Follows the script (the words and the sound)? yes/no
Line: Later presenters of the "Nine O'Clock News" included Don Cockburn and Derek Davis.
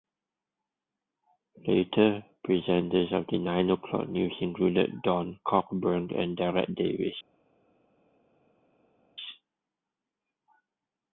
yes